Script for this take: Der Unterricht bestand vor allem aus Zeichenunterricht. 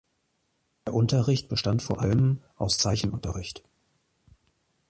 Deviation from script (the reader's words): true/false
false